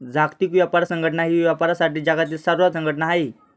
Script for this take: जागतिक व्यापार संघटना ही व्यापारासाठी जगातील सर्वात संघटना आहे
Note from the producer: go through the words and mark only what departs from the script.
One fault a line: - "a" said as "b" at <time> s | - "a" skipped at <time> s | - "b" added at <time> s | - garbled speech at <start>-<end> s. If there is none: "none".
none